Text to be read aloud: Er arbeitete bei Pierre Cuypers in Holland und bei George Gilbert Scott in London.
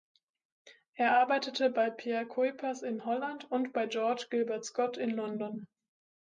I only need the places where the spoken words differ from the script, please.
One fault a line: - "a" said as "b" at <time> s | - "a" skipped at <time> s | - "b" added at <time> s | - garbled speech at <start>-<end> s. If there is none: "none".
none